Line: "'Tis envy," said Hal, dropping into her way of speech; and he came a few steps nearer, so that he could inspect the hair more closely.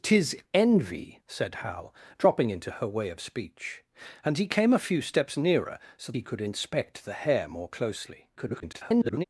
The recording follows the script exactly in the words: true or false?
false